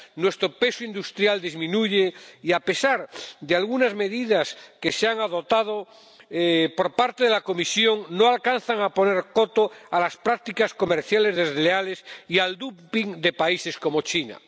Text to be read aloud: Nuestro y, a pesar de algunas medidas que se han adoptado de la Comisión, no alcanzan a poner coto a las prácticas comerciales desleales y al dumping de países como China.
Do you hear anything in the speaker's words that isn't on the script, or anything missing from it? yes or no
yes